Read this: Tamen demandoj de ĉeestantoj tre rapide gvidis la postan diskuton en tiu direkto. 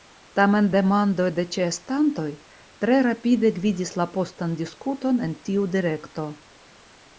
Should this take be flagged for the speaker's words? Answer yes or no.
no